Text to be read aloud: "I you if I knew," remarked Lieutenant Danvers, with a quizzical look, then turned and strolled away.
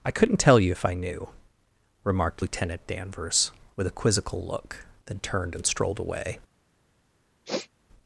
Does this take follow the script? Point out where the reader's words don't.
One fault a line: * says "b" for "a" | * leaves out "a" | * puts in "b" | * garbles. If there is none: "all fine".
* puts in "couldn't tell"